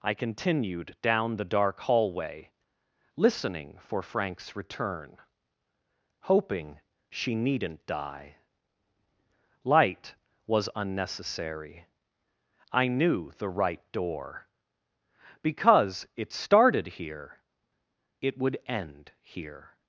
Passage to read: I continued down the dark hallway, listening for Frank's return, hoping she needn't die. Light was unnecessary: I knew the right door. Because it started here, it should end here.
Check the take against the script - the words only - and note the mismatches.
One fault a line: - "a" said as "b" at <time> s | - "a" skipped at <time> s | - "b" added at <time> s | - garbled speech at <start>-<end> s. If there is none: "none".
- "should" said as "would" at 18.4 s